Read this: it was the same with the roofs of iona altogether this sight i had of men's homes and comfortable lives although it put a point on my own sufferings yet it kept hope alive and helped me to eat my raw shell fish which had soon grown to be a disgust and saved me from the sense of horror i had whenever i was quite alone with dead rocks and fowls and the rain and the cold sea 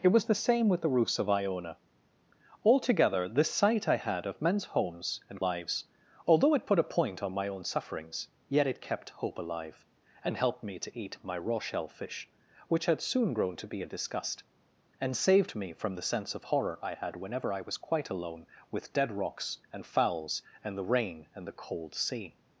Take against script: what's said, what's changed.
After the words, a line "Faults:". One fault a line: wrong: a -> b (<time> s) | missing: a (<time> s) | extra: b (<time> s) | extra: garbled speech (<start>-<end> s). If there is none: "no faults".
it was the same with the roofs of iona altogether this sight i had of men's homes and lives although it put a point on my own sufferings yet it kept hope alive and helped me to eat my raw shell fish which had soon grown to be a disgust and saved me from the sense of horror i had whenever i was quite alone with dead rocks and fowls and the rain and the cold sea
Faults:
missing: comfortable (5.4 s)